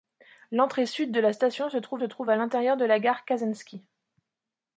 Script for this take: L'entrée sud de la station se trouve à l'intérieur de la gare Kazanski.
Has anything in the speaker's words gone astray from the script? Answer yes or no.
yes